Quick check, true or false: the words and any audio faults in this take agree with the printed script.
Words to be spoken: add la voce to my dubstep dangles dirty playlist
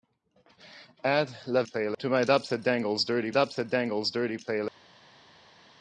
false